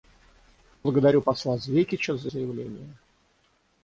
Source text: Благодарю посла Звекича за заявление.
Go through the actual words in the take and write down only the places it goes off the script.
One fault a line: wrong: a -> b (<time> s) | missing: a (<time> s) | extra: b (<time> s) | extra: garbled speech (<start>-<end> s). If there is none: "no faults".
no faults